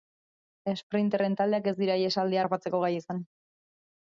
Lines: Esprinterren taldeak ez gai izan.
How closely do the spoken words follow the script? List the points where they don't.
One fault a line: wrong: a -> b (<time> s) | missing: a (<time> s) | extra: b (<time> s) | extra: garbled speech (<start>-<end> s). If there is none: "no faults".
extra: dira ihesaldia harrapatzeko (1.8 s)